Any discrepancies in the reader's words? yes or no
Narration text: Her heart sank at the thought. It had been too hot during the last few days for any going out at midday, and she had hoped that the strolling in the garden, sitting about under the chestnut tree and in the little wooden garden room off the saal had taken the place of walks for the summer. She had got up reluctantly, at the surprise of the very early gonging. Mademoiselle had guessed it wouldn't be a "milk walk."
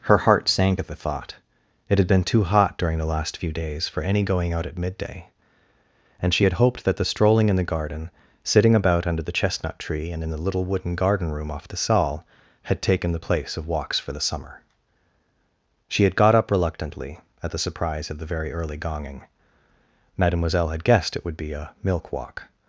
yes